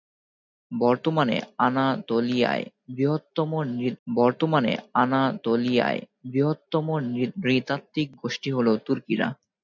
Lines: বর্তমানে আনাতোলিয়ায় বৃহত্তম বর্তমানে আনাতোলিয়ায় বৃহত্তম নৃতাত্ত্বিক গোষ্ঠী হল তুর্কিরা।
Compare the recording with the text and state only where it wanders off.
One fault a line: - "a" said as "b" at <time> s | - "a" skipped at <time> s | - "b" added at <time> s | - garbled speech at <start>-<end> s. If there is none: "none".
none